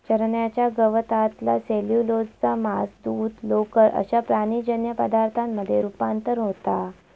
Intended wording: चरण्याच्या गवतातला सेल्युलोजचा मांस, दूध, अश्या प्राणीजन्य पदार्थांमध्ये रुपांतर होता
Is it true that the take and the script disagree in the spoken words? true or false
true